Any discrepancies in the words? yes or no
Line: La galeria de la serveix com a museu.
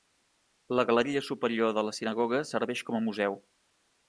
yes